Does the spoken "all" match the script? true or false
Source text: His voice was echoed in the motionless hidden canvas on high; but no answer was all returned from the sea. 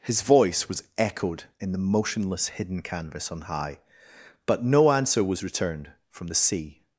false